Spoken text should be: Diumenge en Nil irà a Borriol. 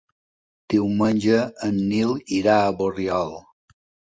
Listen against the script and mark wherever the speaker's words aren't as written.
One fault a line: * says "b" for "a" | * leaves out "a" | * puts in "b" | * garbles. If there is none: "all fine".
all fine